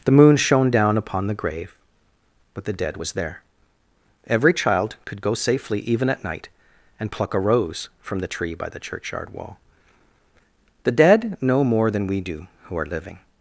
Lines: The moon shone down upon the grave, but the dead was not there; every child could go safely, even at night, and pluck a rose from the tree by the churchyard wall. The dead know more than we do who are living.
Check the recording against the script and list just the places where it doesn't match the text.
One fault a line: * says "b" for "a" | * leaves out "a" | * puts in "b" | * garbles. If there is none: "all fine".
* leaves out "not"